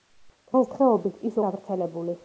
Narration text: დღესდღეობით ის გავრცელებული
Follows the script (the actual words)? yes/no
yes